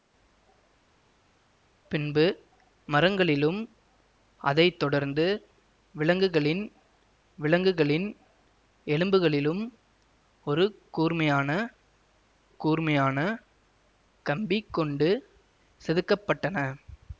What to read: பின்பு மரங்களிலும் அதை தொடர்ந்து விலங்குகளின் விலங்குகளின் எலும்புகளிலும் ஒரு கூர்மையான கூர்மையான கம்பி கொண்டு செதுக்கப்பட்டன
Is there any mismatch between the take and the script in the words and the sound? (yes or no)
no